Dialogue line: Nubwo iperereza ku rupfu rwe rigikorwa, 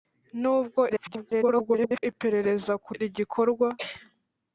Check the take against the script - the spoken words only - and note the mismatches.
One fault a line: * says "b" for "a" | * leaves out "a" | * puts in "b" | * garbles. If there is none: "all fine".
* garbles
* leaves out "rupfu rwe"